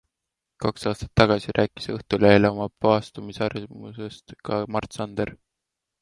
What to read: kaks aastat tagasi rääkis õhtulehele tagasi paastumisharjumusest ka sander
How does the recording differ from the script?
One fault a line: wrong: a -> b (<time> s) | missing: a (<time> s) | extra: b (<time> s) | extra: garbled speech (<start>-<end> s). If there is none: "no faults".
wrong: tagasi -> oma (2.5 s)
extra: mart (4.8 s)